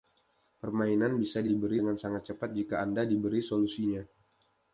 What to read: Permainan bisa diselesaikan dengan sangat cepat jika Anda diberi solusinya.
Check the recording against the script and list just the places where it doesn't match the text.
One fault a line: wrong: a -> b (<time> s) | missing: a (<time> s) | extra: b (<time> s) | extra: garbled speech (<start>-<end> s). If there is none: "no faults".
wrong: diselesaikan -> diberi (1.4 s)